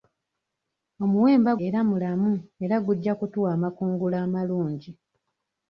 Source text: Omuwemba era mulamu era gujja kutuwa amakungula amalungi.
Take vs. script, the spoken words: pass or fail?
pass